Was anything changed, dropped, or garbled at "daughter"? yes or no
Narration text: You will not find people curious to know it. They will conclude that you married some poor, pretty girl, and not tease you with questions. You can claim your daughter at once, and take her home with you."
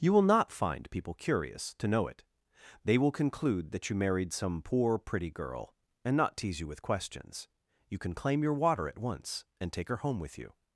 yes